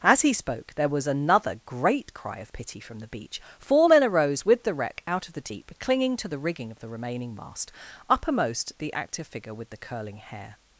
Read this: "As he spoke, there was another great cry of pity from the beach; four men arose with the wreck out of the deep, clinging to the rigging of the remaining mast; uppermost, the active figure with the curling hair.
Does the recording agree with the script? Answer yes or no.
yes